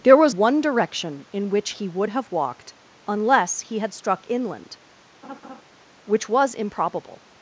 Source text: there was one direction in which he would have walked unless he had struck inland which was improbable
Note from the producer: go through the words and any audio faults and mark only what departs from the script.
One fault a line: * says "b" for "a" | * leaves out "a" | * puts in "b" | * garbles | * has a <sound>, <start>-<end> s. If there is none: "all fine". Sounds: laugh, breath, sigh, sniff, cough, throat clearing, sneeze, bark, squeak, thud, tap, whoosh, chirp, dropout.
* has a laugh, 5.2-5.6 s